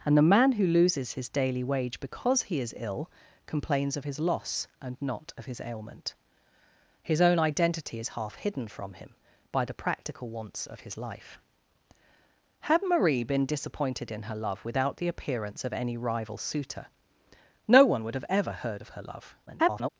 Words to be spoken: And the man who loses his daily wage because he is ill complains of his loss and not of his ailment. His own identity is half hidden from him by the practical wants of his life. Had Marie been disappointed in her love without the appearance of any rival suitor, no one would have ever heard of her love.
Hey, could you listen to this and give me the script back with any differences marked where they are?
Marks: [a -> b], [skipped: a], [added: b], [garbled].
And the man who loses his daily wage because he is ill complains of his loss and not of his ailment. His own identity is half hidden from him by the practical wants of his life. Had Marie been disappointed in her love without the appearance of any rival suitor, no one would have ever heard of her love. [garbled]